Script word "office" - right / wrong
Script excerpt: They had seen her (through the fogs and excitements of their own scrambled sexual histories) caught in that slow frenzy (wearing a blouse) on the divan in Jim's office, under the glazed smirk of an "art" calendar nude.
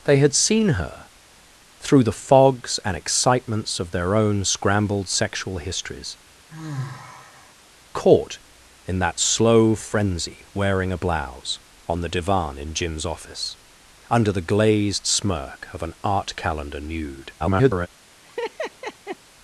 right